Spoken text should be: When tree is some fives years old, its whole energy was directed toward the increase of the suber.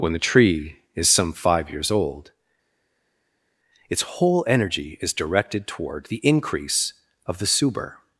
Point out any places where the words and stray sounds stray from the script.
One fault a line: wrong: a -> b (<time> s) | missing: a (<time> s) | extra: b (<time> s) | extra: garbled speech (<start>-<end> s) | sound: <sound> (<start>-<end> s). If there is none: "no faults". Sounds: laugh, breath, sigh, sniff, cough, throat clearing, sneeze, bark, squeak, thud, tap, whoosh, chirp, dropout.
extra: the (0.1 s)
wrong: fives -> five (1.3 s)
wrong: was -> is (5.0 s)